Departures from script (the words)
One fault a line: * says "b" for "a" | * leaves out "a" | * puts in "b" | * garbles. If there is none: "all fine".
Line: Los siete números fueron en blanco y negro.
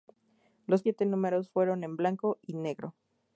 all fine